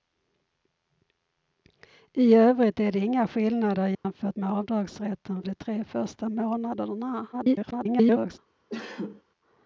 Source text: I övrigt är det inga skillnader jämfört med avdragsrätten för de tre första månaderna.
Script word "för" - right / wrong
wrong